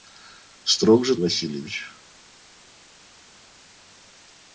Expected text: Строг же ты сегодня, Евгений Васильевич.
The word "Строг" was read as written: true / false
true